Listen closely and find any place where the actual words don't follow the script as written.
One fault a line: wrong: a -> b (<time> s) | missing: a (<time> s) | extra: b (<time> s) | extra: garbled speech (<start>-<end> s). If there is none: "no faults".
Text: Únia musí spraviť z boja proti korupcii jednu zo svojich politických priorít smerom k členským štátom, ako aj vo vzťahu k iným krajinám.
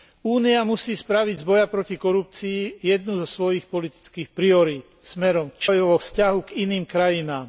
missing: členským štátom ako (5.7 s)